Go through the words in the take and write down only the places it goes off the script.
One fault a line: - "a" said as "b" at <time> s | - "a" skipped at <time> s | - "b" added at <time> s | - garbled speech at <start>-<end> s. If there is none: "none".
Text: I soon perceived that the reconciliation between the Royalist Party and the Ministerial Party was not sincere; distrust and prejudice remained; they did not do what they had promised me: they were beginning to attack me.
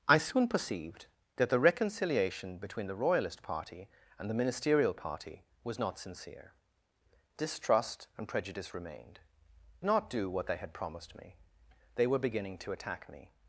- "they did" skipped at 9.2 s